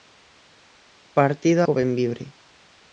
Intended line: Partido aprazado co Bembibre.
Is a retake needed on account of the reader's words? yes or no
yes